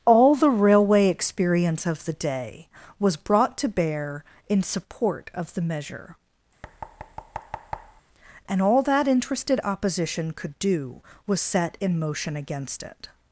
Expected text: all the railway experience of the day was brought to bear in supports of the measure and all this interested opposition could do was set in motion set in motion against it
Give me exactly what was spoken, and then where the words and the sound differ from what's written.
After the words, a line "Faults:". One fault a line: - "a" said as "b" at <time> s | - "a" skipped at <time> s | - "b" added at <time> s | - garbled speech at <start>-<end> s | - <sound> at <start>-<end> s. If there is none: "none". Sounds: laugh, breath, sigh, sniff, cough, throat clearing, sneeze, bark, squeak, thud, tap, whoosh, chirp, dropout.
all the railway experience of the day was brought to bear in support of the measure and all that interested opposition could do was set in motion against it
Faults:
- "supports" said as "support" at 4.6 s
- thud at 6.6-8.0 s
- "this" said as "that" at 8.8 s
- "set in motion" skipped at 12.4 s